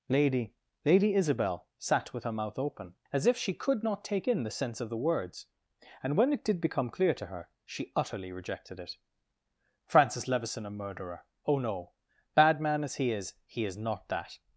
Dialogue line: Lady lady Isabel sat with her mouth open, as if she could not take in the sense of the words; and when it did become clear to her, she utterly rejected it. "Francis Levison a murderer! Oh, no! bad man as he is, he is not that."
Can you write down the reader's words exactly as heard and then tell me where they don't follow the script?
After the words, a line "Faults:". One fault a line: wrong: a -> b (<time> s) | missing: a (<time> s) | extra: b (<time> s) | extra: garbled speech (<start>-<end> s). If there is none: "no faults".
Lady lady Isabel sat with her mouth open, as if she could not take in the sense of the words; and when it did become clear to her, she utterly rejected it. "Francis Levison a murderer! Oh, no! bad man as he is, he is not that."
Faults:
no faults